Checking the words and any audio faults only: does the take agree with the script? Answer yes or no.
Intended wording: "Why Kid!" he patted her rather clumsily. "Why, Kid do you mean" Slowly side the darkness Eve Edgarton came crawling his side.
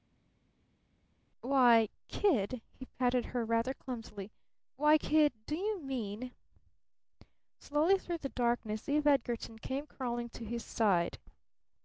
no